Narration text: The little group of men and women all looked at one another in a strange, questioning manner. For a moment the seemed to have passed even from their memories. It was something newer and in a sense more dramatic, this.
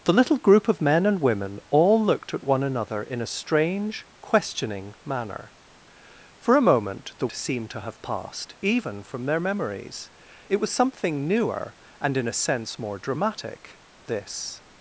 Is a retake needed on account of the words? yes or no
no